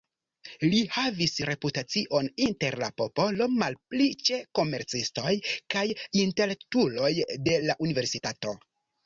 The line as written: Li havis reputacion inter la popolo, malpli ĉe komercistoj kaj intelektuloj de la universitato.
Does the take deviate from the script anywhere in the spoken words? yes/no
no